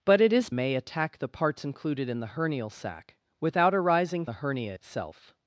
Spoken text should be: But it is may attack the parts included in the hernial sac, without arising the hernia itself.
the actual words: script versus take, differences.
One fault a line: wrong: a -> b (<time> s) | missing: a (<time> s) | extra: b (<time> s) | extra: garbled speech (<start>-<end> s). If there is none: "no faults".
no faults